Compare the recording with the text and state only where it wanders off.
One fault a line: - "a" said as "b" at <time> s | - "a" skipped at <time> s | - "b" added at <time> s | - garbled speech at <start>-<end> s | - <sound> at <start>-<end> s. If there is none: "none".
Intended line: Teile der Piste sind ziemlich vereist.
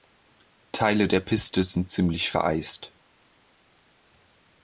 none